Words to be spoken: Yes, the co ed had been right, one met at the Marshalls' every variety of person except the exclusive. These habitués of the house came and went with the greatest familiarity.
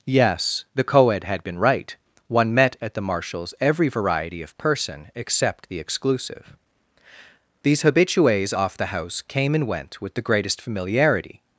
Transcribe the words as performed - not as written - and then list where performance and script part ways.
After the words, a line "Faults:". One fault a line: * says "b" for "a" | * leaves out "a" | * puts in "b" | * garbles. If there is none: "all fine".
Yes, the co ed had been right, one met at the Marshalls' every variety of person except the exclusive. These habitués off the house came and went with the greatest familiarity.
Faults:
* says "off" for "of"